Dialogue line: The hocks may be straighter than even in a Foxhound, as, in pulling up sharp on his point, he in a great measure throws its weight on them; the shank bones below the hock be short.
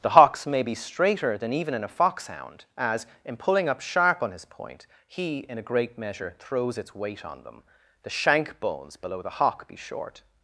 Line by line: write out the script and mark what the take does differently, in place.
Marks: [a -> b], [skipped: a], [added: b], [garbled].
The hocks may be straighter than even in a Foxhound, as, in pulling up sharp on his point, he in a great measure throws its weight on them; the shank bones below the hock be short.